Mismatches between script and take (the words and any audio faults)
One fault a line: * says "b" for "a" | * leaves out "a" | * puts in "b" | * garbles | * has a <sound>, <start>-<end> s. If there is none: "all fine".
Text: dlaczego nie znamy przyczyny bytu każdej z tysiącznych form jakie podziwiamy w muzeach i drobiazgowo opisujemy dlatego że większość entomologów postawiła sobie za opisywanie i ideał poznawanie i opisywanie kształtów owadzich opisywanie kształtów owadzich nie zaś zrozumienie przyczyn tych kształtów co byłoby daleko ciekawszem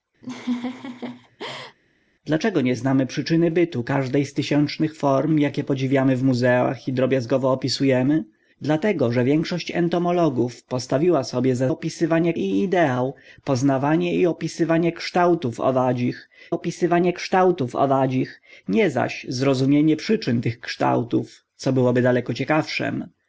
* has a laugh, 0.2-1.8 s